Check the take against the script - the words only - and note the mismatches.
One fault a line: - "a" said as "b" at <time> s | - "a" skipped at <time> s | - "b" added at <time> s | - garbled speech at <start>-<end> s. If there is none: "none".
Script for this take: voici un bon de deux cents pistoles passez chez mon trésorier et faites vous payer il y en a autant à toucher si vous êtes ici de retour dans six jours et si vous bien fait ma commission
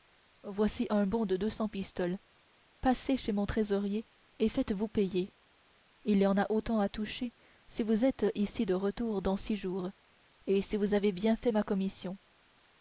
- "avez" added at 10.9 s